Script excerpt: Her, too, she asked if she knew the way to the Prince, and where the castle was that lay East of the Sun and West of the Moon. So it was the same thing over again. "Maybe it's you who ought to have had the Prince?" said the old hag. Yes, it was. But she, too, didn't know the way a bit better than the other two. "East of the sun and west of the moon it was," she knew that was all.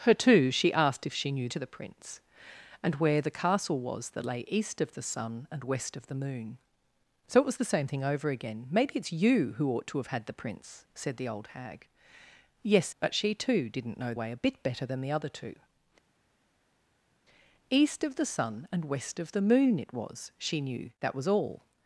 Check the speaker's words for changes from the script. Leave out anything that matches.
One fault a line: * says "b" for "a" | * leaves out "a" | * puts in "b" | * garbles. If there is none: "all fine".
* leaves out "the way"
* leaves out "it was"
* leaves out "the"